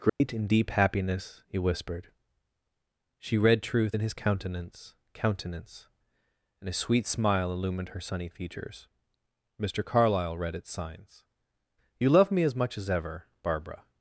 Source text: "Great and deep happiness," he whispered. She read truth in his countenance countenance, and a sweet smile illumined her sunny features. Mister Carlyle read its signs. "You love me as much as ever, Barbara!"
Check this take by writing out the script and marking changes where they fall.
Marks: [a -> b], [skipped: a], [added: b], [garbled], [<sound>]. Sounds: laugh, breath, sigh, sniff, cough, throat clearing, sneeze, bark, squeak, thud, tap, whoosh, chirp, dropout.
"Great [dropout] and deep happiness," he whispered. She read truth in his countenance countenance, and a sweet smile illumined her sunny features. Mister Carlyle read its signs. "You love me as much as ever, Barbara!"